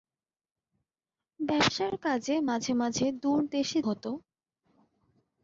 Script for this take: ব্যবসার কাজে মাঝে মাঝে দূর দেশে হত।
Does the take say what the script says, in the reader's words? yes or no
yes